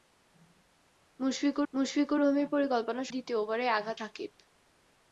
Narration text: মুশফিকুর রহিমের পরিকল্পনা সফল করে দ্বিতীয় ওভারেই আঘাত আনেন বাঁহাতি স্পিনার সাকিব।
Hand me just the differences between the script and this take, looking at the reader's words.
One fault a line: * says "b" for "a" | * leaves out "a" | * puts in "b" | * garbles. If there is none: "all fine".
* puts in "মুশফিকুর"
* leaves out "সফল করে"
* leaves out "আনেন বাঁহাতি স্পিনার"